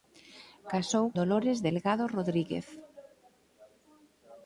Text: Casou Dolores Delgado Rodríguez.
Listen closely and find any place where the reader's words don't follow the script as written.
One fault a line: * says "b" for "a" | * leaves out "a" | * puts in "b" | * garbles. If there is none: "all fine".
all fine